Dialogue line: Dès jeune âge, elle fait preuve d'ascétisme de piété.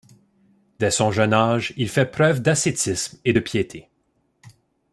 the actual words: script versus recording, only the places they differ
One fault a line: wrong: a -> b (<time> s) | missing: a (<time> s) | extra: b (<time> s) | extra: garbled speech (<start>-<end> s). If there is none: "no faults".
extra: son (0.9 s)
wrong: elle -> il (1.8 s)
extra: et (3.2 s)